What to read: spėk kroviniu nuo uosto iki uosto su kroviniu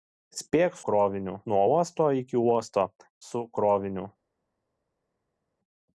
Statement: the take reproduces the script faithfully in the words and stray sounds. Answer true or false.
true